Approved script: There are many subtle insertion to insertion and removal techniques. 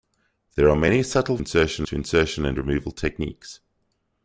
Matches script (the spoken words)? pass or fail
pass